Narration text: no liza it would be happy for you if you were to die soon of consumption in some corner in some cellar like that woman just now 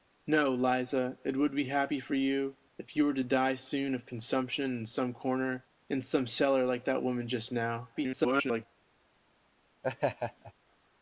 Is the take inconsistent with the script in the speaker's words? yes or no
yes